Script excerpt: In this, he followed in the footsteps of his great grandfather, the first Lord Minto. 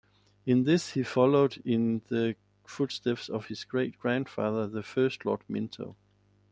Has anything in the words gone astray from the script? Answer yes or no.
no